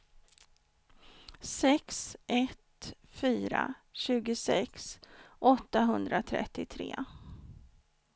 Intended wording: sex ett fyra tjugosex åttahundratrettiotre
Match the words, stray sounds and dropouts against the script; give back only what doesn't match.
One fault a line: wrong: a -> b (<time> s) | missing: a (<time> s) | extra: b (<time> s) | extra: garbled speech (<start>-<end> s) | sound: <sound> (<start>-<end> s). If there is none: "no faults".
no faults